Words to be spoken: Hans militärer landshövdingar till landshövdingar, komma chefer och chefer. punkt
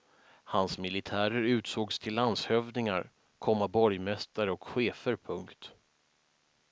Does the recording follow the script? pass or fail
fail